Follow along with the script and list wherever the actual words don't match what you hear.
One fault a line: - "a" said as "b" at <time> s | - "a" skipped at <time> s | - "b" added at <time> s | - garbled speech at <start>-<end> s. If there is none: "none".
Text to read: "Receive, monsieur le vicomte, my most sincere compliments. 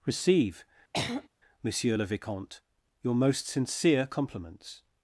- "my" said as "your" at 3.0 s